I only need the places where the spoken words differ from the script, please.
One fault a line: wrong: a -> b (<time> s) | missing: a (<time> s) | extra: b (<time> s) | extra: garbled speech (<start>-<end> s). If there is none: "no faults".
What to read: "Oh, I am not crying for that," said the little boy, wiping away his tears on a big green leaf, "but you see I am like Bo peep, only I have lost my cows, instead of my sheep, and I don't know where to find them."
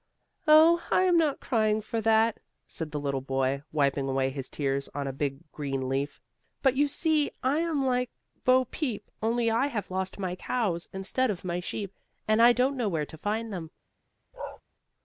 no faults